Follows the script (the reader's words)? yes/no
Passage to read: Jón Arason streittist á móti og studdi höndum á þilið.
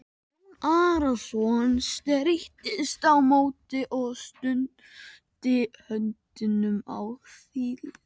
yes